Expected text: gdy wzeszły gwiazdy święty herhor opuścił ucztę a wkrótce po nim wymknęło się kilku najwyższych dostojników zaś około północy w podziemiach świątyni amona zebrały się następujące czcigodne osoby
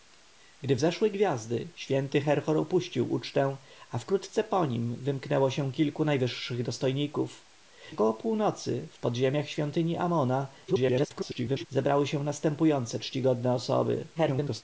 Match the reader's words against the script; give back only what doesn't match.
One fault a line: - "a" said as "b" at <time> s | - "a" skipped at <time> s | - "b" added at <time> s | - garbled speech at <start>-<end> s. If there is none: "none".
- "zaś" skipped at 7.5 s
- garbled speech at 10.7-11.7 s
- garbled speech at 14.2-14.6 s